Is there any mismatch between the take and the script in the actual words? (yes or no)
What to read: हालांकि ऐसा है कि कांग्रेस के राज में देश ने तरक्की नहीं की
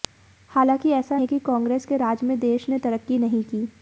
no